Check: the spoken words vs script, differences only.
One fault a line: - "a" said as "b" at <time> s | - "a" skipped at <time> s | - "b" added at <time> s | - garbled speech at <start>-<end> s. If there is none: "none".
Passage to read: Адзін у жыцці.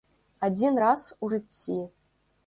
- "раз" added at 0.8 s